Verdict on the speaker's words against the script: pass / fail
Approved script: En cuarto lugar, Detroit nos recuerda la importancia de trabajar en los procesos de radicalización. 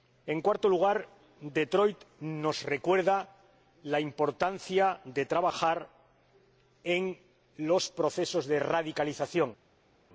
pass